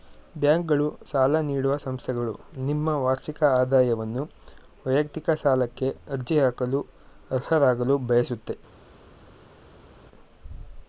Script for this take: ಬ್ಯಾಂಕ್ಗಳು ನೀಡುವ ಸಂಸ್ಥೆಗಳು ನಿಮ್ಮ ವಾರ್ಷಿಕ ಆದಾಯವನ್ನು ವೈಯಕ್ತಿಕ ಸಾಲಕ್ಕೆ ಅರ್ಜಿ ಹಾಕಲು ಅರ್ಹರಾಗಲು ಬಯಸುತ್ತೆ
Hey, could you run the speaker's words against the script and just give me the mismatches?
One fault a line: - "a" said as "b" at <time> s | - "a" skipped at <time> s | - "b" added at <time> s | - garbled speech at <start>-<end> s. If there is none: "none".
- "ಸಾಲ" added at 1.1 s